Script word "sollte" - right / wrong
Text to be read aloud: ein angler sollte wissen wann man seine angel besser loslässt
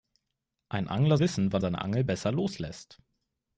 wrong